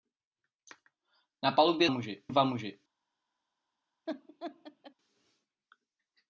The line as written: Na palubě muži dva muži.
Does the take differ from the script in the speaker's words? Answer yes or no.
no